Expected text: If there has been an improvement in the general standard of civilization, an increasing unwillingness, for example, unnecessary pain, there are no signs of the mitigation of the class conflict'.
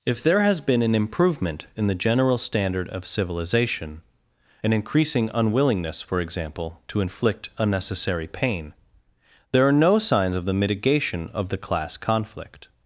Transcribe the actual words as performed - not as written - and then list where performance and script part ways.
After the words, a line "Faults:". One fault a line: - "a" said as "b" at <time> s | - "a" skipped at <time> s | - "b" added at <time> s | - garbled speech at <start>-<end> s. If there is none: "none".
If there has been an improvement in the general standard of civilization, an increasing unwillingness, for example, to inflict unnecessary pain, there are no signs of the mitigation of the class conflict'.
Faults:
- "to inflict" added at 6.9 s